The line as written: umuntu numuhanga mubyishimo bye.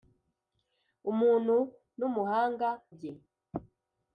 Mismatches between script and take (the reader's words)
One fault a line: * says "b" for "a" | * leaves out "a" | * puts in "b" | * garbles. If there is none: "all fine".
* leaves out "mubyishimo"